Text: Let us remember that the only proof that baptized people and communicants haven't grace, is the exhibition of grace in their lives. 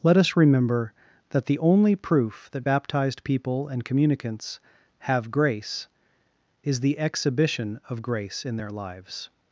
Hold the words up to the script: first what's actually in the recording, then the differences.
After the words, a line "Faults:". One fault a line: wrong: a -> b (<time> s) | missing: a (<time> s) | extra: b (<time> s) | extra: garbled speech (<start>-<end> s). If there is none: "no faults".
Let us remember that the only proof that baptized people and communicants have grace, is the exhibition of grace in their lives.
Faults:
wrong: haven't -> have (5.0 s)